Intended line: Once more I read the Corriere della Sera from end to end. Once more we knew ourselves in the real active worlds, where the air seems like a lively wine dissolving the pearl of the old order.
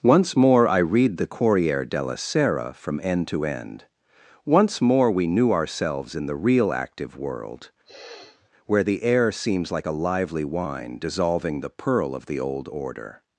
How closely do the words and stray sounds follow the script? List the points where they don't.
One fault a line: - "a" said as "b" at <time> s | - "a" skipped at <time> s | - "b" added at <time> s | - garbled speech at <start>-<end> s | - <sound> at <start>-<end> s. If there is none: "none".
- "worlds" said as "world" at 7.2 s
- sniff at 7.9-8.5 s